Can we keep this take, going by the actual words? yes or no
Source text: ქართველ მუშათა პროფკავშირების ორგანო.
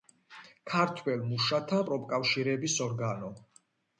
yes